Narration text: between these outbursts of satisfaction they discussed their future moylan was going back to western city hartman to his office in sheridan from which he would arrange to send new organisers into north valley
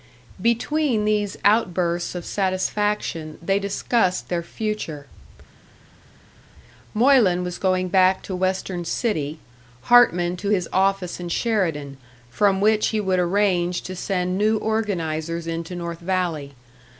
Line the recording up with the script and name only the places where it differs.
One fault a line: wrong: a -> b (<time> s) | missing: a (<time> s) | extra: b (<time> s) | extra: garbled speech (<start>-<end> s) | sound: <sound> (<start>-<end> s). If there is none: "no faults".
no faults